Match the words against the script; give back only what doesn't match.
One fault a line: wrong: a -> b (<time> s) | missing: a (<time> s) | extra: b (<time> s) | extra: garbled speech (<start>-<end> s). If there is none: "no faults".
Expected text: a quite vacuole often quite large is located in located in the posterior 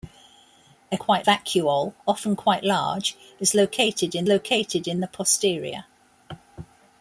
no faults